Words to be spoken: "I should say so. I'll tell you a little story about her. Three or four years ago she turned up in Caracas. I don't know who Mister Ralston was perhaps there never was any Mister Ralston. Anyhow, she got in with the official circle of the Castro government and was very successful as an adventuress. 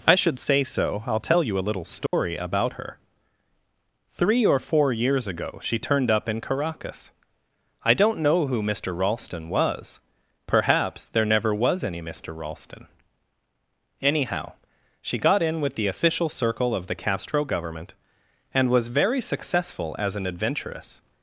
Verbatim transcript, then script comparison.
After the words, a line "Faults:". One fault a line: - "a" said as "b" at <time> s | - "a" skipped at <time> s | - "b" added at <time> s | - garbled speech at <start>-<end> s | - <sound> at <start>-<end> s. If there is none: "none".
"I should say so. I'll tell you a little story about her. Three or four years ago she turned up in Caracas. I don't know who Mister Ralston was perhaps there never was any Mister Ralston. Anyhow, she got in with the official circle of the Castro government and was very successful as an adventuress.
Faults:
- dropout at 2.1-2.1 s